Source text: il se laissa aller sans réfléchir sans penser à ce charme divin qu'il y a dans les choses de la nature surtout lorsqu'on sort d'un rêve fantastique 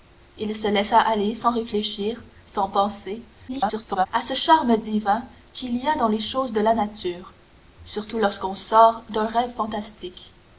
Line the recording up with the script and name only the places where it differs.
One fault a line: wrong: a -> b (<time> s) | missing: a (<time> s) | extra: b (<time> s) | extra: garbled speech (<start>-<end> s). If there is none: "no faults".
extra: garbled speech (3.5-4.1 s)